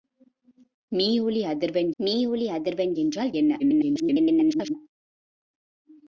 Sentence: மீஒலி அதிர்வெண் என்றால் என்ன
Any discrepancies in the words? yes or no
yes